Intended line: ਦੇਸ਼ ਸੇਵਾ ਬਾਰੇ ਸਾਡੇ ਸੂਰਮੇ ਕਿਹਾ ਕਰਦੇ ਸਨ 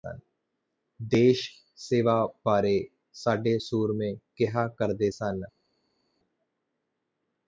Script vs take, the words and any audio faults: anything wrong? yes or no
no